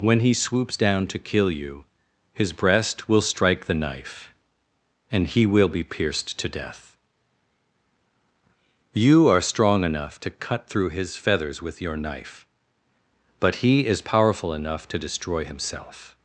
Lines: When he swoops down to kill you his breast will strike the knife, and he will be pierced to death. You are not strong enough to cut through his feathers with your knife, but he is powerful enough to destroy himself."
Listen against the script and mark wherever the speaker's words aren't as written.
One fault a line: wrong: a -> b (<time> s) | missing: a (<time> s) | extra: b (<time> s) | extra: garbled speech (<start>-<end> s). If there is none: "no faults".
missing: not (9.4 s)